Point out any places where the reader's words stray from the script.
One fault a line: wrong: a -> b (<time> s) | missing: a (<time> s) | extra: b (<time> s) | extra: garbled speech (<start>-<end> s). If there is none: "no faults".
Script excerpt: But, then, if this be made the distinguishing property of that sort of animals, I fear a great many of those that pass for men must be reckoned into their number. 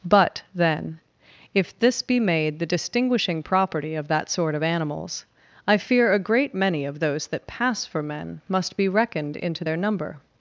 no faults